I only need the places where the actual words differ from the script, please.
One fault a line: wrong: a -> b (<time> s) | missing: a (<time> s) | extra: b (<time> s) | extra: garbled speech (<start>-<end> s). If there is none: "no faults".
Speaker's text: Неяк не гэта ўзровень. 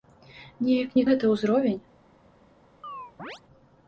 no faults